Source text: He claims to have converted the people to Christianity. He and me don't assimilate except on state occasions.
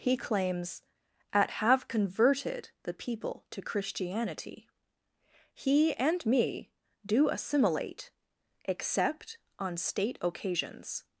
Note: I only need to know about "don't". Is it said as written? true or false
false